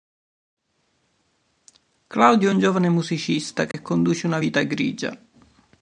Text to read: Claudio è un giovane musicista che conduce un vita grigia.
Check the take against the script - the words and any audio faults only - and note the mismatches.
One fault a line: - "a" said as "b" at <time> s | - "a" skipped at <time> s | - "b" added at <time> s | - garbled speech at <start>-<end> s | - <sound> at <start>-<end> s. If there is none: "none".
- dropout at 3.7-3.7 s
- "un" said as "una" at 4.3 s